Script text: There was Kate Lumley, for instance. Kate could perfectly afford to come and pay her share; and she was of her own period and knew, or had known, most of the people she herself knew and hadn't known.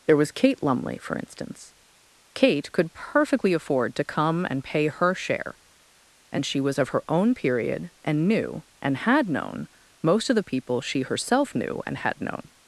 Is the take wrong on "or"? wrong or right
wrong